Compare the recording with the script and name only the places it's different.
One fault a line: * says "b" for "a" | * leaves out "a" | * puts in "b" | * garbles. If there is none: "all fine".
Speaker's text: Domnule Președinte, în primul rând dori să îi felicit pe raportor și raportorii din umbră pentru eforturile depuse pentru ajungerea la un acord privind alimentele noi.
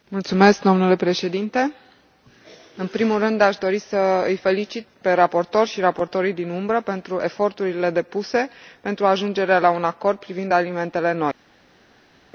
* puts in "aș"